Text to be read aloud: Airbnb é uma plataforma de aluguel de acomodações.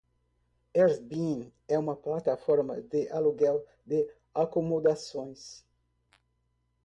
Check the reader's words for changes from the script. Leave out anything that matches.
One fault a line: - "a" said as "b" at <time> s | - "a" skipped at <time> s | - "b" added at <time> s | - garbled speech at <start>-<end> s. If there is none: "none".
none